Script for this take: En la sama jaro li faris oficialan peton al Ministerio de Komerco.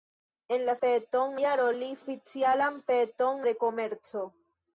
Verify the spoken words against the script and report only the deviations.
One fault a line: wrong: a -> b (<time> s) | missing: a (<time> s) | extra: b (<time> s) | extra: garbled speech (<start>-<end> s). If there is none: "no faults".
wrong: sama -> peton (0.8 s)
missing: faris (1.9 s)
missing: al Ministerio (3.4 s)